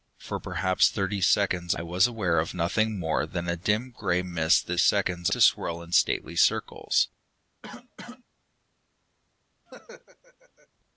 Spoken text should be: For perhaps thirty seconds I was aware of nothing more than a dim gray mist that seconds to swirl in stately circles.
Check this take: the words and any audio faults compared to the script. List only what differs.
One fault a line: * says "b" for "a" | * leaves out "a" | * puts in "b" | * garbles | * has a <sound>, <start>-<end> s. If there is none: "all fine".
* has a cough, 7.6-8.2 s
* has a laugh, 9.7-10.7 s